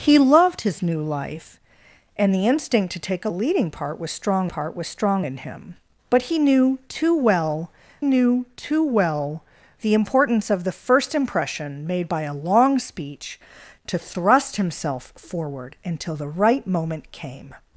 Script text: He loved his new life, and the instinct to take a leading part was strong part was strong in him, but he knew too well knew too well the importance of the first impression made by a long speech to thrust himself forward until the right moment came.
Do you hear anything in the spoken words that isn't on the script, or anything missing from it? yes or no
no